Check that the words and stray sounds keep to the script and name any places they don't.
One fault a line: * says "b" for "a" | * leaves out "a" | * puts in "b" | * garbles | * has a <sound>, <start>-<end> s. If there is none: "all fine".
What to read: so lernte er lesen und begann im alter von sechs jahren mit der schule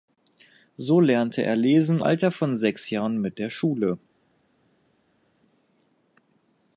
* leaves out "und begann im"